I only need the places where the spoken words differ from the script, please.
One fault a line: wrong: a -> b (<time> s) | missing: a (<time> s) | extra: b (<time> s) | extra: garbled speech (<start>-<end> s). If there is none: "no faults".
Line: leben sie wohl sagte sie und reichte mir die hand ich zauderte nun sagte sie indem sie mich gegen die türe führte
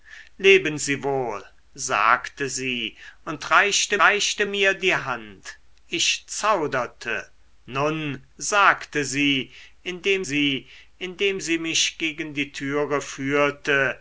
extra: reichte (4.0 s)
extra: indem sie (11.0 s)